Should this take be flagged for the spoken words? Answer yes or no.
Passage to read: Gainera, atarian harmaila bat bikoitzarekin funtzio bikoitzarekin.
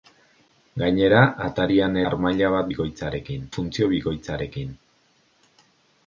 no